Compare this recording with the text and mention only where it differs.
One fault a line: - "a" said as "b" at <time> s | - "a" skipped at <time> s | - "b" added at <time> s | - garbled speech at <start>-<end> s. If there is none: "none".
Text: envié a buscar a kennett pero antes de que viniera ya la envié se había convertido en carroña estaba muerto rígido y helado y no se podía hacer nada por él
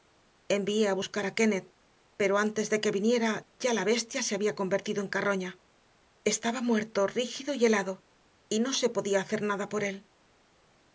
- "envié" said as "bestia" at 3.9 s